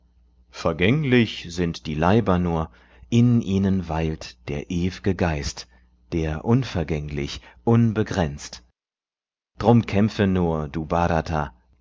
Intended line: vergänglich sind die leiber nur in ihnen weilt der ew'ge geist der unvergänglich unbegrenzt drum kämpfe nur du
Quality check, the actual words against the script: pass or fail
pass